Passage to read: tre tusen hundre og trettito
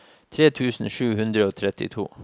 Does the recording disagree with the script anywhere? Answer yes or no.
yes